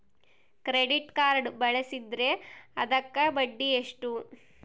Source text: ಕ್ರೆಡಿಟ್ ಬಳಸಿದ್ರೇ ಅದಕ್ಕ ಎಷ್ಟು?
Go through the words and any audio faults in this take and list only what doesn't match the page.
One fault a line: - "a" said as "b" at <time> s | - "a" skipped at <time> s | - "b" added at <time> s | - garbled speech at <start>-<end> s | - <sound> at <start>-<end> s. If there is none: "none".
- "ಕಾರ್ಡ್" added at 1.1 s
- "ಬಡ್ಡಿ" added at 3.3 s